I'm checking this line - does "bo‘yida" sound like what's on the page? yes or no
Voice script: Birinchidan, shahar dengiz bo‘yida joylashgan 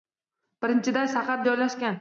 no